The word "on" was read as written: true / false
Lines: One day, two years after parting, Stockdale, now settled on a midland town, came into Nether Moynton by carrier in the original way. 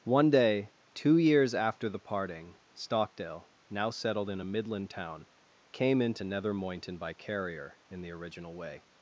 false